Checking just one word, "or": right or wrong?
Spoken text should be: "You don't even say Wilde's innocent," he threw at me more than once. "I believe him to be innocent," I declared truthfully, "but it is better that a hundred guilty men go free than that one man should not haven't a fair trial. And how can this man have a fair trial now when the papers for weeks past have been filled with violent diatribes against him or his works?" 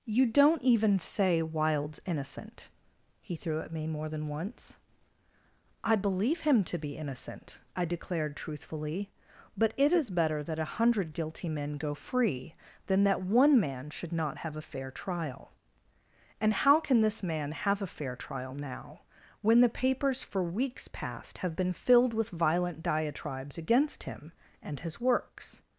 wrong